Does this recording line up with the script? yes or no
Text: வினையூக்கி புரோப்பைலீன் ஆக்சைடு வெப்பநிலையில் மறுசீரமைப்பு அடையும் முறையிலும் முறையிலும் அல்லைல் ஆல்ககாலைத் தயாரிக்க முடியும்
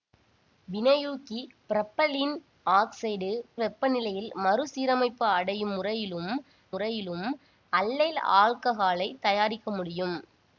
yes